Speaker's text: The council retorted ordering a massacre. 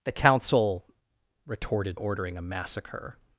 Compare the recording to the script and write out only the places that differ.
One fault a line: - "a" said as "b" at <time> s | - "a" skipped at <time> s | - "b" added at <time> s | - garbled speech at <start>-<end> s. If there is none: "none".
none